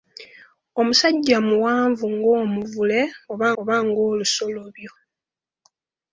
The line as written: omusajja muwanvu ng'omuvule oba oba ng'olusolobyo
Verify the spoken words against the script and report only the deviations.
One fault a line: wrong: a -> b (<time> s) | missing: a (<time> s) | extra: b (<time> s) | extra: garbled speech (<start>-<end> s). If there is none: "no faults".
no faults